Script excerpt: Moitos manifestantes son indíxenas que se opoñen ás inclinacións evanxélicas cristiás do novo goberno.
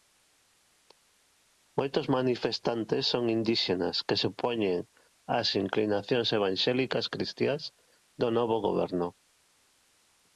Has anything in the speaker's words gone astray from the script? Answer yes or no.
no